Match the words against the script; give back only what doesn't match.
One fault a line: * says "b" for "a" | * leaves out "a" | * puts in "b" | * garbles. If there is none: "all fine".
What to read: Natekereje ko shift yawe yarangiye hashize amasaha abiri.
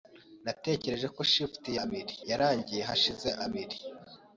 * says "abiri" for "yawe"
* leaves out "amasaha"